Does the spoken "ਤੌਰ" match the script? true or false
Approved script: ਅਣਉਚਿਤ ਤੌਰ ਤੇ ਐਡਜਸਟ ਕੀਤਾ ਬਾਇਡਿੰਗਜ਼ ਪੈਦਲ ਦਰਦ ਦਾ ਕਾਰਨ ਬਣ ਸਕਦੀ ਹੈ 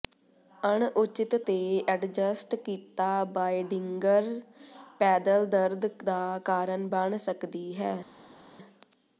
false